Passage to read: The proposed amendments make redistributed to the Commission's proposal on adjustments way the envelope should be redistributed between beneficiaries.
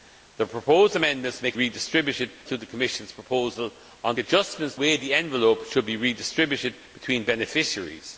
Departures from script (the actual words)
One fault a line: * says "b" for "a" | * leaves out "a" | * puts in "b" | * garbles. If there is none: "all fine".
all fine